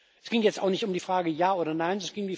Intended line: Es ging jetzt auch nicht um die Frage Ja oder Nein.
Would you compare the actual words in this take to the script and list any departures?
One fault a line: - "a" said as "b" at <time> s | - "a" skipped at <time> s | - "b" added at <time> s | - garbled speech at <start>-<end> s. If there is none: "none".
none